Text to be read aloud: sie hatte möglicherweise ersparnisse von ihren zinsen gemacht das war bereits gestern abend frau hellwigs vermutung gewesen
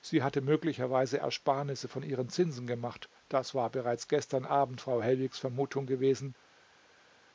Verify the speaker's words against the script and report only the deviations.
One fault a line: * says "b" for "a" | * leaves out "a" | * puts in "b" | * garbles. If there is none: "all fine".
all fine